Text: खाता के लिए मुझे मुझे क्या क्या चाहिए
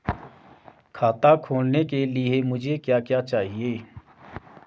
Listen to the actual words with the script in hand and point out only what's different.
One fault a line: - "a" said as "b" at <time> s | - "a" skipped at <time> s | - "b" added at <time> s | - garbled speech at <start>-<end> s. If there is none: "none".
- "खोलने" added at 1.4 s
- "मुझे" skipped at 2.8 s